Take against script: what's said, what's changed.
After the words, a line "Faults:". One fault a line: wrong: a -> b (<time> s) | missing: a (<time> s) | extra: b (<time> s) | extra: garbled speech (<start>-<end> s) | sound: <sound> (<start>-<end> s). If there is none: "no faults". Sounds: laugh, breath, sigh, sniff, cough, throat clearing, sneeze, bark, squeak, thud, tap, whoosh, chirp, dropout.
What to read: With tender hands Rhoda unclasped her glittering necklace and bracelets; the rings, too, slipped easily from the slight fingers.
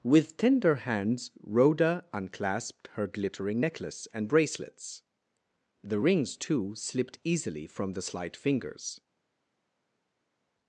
With tender hands Rhoda unclasped her glittering necklace and bracelets; the rings, too, slipped easily from the slight fingers.
Faults:
no faults